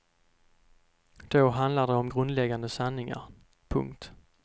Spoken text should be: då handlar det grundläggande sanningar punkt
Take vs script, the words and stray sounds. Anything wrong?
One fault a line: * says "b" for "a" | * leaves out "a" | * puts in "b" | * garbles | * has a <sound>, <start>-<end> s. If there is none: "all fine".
* puts in "om"